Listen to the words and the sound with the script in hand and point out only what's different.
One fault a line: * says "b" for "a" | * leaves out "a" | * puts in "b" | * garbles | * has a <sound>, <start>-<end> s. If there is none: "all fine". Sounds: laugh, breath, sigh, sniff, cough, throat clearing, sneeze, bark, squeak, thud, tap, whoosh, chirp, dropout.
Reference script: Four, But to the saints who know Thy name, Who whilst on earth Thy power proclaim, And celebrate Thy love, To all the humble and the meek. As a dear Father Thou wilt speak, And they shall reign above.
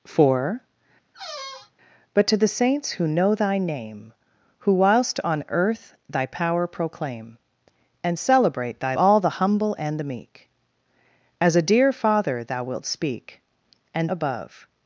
* has a squeak, 1.1-1.7 s
* leaves out "love To"
* leaves out "they shall reign"